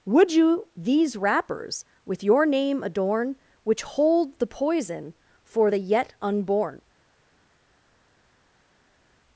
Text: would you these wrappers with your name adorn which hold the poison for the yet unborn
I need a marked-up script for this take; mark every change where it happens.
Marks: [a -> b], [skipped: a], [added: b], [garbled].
would you these wrappers with your name adorn which hold the poison for the yet unborn